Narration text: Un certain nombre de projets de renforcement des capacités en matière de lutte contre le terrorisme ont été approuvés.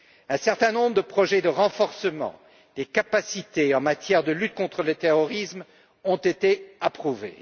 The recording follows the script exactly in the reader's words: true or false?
true